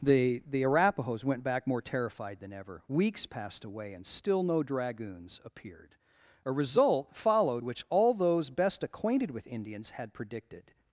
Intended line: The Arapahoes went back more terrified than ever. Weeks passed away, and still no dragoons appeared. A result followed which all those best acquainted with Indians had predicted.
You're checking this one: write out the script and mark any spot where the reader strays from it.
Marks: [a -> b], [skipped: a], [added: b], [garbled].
The [added: the] Arapahoes went back more terrified than ever. Weeks passed away, and still no dragoons appeared. A result followed which all those best acquainted with Indians had predicted.